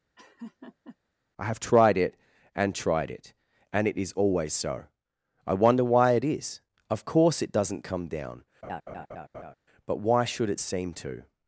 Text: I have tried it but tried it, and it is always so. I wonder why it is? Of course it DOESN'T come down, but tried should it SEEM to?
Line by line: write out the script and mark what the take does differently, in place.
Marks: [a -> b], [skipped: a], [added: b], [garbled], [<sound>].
[laugh] I have tried it [but -> and] tried it, and it is always so. I wonder why it is? Of course it DOESN'T come down, [laugh] but [tried -> why] should it SEEM to?